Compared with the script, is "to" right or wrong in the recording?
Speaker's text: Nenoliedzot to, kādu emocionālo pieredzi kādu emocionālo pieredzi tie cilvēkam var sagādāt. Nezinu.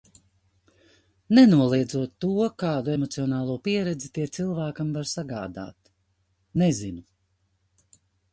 right